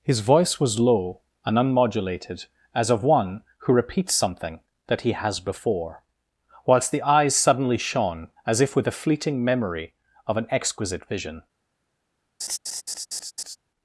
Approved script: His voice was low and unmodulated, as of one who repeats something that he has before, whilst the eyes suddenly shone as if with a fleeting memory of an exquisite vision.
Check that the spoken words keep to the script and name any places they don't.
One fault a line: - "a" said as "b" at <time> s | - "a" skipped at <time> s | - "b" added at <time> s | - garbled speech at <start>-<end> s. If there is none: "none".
none